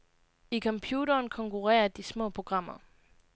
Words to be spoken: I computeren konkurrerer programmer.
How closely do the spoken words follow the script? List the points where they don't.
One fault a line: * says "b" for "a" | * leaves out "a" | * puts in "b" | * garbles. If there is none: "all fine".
* puts in "de små"